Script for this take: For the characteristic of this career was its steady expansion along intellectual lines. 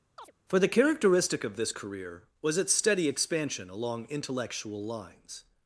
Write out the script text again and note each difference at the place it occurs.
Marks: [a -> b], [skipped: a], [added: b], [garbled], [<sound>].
[chirp] For the characteristic of this career was its steady expansion along intellectual lines.